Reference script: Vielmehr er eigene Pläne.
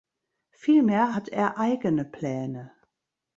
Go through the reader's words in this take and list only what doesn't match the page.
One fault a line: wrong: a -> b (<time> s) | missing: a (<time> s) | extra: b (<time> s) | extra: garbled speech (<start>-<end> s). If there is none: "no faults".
extra: hat (1.1 s)